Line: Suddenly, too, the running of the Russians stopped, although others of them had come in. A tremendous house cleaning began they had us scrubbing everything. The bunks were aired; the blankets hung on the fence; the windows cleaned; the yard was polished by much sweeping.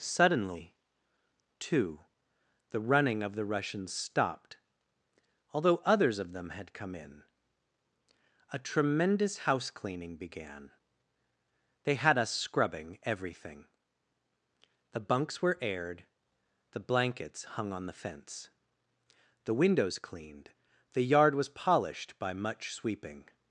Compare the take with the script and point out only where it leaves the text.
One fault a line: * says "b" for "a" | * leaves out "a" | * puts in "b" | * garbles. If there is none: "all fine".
all fine